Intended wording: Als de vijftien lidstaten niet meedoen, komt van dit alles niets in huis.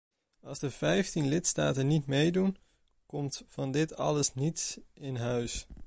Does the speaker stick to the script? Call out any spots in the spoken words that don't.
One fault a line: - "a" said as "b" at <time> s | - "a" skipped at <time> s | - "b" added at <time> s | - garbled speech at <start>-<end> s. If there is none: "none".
none